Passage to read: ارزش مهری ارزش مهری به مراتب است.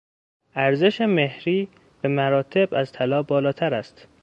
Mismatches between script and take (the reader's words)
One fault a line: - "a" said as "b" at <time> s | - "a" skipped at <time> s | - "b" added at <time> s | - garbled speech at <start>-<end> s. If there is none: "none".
- "ارزش مهری به مراتب" said as "به مراتب از طلا بالاتر" at 2.0 s